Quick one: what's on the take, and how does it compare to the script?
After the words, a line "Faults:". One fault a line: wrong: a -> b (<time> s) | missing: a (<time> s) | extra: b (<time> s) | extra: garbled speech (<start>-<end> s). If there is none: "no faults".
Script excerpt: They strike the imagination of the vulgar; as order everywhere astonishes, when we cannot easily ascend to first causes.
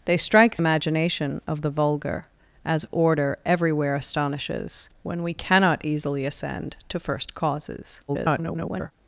They strike imagination of the vulgar; as order everywhere astonishes, when we cannot easily ascend to first causes. [garbled]
Faults:
missing: the (0.6 s)
extra: garbled speech (8.1-8.9 s)